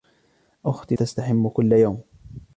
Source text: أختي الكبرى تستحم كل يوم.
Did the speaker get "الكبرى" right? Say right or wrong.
wrong